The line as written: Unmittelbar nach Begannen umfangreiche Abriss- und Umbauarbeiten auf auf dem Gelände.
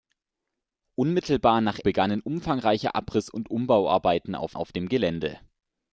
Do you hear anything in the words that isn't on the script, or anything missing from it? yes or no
no